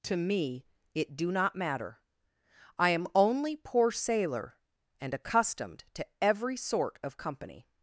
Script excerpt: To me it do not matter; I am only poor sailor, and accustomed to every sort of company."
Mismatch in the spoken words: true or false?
false